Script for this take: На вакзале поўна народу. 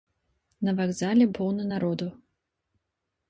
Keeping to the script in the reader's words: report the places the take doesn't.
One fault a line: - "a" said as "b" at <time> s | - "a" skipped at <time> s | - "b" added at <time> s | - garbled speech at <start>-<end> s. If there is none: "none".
none